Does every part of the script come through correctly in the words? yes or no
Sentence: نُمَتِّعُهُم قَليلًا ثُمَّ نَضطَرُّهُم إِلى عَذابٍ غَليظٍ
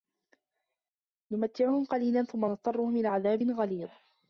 yes